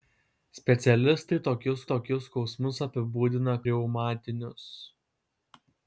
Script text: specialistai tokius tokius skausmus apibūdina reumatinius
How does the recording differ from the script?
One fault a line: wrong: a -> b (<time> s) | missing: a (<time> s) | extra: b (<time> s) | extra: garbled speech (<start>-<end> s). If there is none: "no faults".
no faults